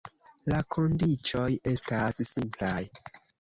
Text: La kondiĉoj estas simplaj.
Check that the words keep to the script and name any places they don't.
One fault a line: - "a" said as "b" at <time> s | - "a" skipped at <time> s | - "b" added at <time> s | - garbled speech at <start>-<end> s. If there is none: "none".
none